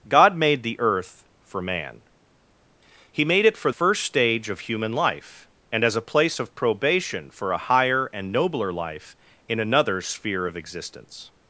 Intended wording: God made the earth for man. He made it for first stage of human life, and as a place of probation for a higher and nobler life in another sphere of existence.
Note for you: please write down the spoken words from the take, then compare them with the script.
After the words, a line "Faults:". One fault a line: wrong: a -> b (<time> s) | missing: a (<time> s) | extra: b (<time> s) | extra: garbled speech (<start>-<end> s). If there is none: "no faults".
God made the earth for man. He made it for first stage of human life, and as a place of probation for a higher and nobler life in another sphere of existence.
Faults:
no faults